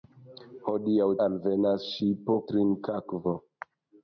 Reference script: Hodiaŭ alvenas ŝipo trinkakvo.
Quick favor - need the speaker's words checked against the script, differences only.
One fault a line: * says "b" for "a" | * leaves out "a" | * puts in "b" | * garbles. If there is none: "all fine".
all fine